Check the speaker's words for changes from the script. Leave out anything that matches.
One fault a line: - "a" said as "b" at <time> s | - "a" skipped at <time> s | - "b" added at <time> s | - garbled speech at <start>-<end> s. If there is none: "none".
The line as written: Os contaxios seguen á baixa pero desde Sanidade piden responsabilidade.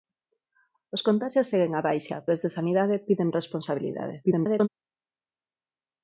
- "pero" skipped at 2.2 s
- garbled speech at 4.2-4.7 s